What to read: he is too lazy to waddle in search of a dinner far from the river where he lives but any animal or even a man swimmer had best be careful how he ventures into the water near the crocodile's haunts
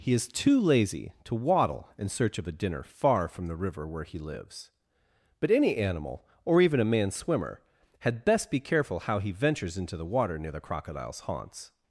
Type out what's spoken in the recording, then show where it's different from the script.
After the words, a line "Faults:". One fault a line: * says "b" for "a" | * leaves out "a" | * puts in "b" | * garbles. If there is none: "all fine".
he is too lazy to waddle in search of a dinner far from the river where he lives but any animal or even a man swimmer had best be careful how he ventures into the water near the crocodile's haunts
Faults:
all fine